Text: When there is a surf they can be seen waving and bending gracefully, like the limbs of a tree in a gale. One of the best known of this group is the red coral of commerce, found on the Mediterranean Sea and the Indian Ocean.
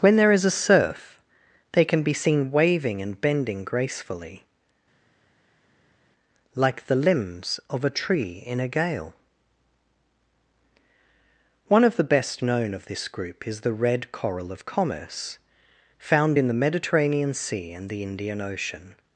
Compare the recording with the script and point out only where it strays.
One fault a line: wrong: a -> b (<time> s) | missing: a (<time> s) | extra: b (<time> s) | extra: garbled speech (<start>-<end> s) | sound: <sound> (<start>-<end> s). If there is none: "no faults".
wrong: on -> in (16.4 s)